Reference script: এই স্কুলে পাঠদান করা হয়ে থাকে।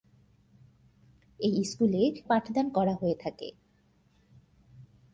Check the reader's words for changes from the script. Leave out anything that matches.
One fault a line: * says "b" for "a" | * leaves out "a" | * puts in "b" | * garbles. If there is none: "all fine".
all fine